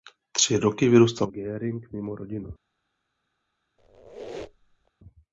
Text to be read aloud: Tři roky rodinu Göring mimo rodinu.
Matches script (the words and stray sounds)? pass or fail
fail